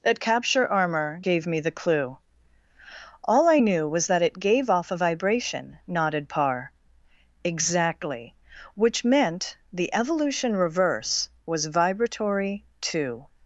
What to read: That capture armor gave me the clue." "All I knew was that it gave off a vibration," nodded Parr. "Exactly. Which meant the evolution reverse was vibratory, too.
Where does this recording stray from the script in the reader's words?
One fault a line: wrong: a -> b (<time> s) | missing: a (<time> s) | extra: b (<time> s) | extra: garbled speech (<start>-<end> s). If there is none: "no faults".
no faults